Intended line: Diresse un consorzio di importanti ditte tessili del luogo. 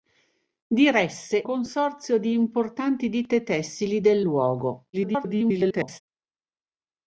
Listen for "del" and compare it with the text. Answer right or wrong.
right